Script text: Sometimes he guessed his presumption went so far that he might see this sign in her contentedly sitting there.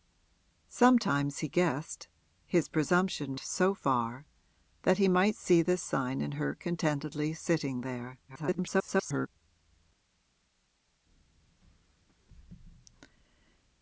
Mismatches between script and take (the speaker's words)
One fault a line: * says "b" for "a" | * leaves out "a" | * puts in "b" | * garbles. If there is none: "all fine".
* leaves out "went"
* garbles